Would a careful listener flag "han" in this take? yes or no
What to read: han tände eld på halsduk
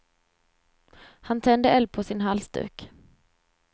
no